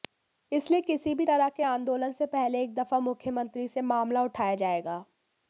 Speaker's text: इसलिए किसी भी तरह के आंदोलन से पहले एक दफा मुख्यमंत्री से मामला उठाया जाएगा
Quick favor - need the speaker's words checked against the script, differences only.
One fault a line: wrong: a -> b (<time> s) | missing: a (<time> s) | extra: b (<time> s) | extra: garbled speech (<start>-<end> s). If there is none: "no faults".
no faults